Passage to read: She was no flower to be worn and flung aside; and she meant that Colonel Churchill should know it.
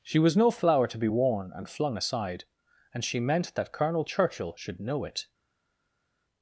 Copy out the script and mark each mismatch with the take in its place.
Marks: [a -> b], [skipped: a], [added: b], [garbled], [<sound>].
She was no flower to be worn and flung aside; and she meant that Colonel Churchill should know it.